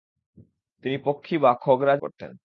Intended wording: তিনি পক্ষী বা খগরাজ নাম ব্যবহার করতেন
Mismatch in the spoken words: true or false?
true